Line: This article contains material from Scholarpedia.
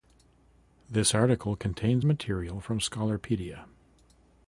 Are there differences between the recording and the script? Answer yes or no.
no